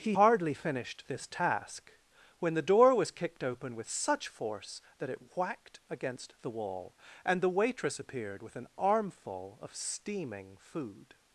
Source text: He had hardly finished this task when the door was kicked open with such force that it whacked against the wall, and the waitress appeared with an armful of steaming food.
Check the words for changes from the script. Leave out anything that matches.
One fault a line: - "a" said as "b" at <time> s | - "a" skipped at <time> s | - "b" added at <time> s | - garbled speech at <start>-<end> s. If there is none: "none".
- "had" skipped at 0.1 s